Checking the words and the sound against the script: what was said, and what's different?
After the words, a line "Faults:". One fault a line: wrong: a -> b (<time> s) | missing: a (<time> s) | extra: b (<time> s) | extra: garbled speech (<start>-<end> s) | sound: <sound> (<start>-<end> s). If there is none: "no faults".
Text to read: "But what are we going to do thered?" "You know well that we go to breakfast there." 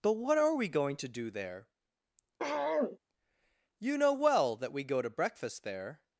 "But what are we going to do there?" "You know well that we go to breakfast there."
Faults:
wrong: thered -> there (1.3 s)
sound: throat clearing (2.4-3.0 s)